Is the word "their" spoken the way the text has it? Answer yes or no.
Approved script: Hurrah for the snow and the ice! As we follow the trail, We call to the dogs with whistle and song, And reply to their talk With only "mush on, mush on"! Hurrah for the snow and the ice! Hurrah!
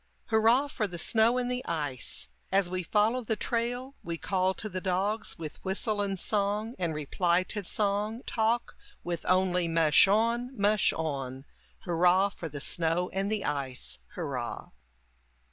no